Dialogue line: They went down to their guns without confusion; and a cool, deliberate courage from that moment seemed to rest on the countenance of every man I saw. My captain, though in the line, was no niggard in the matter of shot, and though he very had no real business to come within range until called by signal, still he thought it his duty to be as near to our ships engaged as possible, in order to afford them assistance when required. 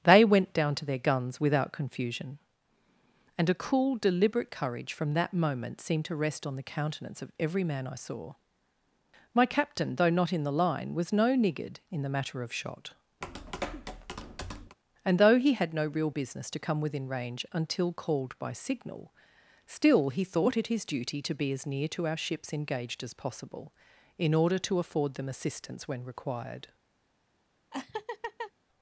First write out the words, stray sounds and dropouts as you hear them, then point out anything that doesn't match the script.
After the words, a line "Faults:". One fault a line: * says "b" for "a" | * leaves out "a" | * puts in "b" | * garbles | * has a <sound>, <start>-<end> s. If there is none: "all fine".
They went down to their guns without confusion; and a cool, deliberate courage from that moment seemed to rest on the countenance of every man I saw. My captain, though not in the line, was no niggard in the matter of shot, and though he had no real business to come within range until called by signal, still he thought it his duty to be as near to our ships engaged as possible, in order to afford them assistance when required.
Faults:
* puts in "not"
* has a tap, 13.2-14.8 s
* leaves out "very"
* has a laugh, 27.7-28.5 s